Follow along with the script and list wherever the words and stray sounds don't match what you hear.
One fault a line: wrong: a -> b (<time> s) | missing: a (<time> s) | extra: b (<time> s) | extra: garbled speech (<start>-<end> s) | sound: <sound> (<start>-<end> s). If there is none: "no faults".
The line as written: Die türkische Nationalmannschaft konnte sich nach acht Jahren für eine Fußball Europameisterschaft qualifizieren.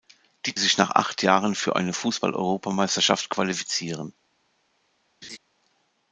missing: türkische Nationalmannschaft konnte (0.6 s)
sound: laugh (5.2-5.4 s)